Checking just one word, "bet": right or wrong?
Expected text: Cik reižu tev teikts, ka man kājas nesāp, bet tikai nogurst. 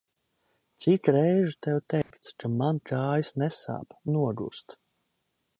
wrong